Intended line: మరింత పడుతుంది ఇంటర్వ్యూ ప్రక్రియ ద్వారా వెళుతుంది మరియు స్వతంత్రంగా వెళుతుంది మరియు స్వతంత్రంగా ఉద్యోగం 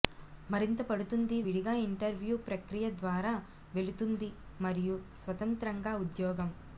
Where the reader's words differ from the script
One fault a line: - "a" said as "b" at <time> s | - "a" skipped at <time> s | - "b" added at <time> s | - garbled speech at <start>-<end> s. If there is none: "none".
- "విడిగా" added at 1.4 s
- "వెళుతుంది మరియు స్వతంత్రంగా" skipped at 5.9 s